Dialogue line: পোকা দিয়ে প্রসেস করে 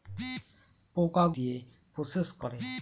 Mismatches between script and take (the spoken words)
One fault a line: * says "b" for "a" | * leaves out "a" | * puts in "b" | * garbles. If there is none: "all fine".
all fine